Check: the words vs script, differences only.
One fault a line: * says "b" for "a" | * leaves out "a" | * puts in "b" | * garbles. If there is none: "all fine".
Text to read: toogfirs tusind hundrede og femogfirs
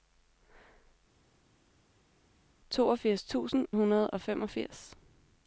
all fine